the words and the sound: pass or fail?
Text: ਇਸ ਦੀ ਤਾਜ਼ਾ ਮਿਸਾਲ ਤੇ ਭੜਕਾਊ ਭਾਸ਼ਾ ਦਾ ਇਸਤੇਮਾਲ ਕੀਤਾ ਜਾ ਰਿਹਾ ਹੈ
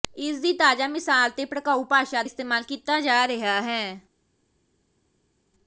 fail